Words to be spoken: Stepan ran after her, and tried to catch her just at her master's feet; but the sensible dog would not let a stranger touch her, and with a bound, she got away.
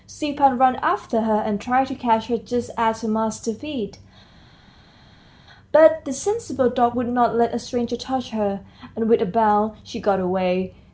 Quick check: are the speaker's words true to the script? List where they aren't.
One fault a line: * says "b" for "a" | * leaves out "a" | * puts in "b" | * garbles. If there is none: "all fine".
all fine